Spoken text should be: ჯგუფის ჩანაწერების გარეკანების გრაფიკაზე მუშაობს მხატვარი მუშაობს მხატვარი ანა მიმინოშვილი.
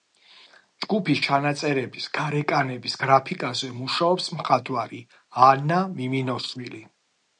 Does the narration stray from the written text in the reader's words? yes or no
yes